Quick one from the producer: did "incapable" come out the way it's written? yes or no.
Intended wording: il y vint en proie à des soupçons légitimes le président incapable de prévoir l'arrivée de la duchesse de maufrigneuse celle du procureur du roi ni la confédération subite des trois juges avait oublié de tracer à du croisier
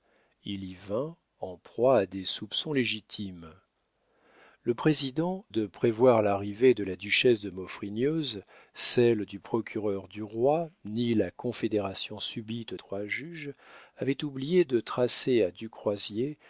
no